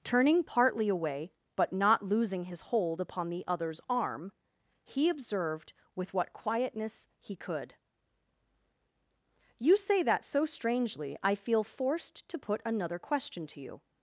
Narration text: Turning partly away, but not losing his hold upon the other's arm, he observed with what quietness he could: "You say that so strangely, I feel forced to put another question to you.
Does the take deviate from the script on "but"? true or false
false